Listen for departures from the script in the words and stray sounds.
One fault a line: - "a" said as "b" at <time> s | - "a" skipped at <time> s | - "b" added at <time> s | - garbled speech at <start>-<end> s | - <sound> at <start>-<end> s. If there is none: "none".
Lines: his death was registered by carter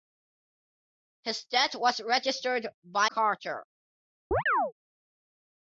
- chirp at 4.3-4.7 s